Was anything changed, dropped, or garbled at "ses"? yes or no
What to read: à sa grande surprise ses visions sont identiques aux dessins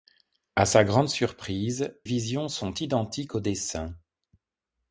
yes